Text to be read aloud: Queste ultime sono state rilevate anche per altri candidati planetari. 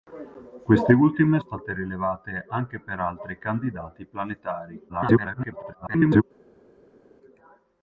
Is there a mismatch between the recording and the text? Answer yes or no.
yes